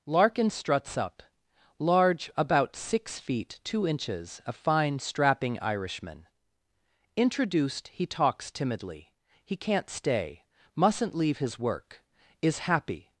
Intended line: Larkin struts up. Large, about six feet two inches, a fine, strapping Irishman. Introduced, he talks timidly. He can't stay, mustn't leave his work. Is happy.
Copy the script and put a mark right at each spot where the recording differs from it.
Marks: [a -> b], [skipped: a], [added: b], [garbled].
Larkin struts up. Large, about six feet two inches, a fine, strapping Irishman. Introduced, he talks timidly. He can't stay, mustn't leave his work. Is happy.